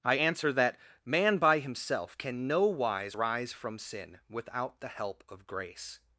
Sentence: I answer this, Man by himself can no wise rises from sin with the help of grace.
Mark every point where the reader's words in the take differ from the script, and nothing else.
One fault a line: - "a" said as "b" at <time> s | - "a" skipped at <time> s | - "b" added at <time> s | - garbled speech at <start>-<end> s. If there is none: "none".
- "this" said as "that" at 0.5 s
- "rises" said as "rise" at 3.1 s
- "with" said as "without" at 4.3 s